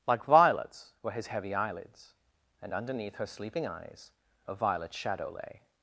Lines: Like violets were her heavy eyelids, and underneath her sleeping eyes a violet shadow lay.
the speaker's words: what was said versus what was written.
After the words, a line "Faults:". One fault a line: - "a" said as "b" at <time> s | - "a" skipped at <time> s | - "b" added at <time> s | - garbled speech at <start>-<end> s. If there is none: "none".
Like violets were his heavy eyelids, and underneath her sleeping eyes a violet shadow lay.
Faults:
- "her" said as "his" at 1.1 s